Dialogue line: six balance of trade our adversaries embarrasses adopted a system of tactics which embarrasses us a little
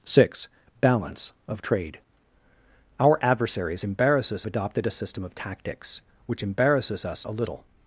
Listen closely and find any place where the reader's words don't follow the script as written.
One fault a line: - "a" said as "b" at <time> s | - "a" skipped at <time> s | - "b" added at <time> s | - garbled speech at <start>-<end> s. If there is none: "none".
none